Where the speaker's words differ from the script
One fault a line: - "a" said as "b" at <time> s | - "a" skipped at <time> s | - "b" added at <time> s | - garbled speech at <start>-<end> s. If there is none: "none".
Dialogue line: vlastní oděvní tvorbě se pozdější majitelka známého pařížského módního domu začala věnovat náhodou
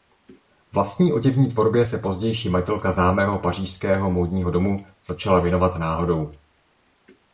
none